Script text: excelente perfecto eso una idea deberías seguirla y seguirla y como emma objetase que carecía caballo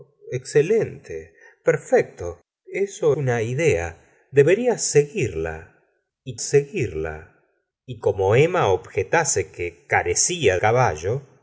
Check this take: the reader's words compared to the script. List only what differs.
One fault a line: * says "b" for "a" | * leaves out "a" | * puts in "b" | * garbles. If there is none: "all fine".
all fine